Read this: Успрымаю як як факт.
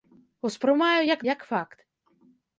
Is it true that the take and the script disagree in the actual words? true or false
false